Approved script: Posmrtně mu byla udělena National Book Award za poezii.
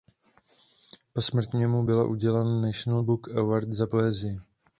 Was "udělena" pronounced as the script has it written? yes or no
yes